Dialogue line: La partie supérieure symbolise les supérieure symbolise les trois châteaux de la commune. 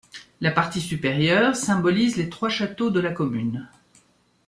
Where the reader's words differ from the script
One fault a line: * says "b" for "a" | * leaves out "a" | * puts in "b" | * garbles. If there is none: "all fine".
* leaves out "supérieure symbolise les"